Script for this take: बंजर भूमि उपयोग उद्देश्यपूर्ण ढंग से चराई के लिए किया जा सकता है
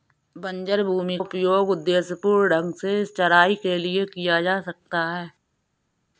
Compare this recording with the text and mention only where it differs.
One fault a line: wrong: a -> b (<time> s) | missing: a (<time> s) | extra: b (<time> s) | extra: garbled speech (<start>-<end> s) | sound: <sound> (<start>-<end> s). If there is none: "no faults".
no faults